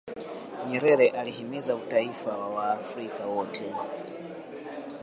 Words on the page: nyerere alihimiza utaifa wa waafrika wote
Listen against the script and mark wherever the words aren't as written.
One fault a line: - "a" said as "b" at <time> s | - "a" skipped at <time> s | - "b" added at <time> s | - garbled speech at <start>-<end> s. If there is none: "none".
none